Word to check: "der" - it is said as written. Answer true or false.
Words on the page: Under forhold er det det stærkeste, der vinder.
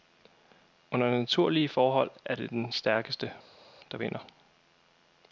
true